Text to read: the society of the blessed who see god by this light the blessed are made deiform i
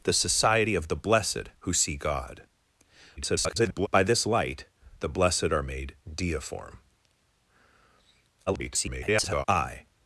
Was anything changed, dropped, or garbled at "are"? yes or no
no